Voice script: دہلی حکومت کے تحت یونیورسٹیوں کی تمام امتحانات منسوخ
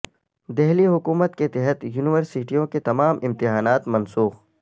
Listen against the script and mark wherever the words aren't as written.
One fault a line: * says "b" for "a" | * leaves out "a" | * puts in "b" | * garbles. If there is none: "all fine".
* says "کے" for "کی"